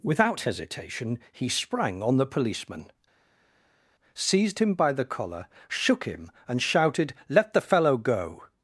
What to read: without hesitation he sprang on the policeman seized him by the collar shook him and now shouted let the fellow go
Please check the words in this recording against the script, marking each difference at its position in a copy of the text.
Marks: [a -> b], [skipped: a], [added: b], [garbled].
without hesitation he sprang on the policeman seized him by the collar shook him and [skipped: now] shouted let the fellow go